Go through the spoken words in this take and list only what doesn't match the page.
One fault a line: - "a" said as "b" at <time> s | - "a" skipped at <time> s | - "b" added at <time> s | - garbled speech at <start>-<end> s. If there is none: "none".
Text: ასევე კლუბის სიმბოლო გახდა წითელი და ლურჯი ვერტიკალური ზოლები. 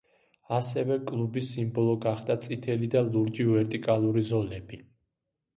none